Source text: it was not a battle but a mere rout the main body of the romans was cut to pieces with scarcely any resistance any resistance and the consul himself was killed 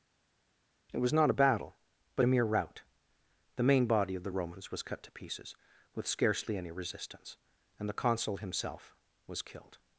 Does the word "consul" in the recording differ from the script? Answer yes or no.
no